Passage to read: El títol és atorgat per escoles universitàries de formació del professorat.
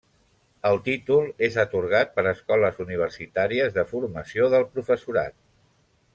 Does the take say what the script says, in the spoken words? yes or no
yes